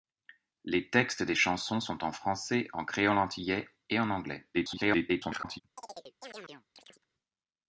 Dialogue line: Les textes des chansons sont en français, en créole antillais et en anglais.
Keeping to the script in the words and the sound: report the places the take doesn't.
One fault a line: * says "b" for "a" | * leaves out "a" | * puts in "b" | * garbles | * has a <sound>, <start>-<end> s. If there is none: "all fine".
* garbles
* has a chirp, 5.8-7.1 s